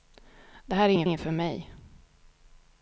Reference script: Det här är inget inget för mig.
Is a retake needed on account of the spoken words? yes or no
no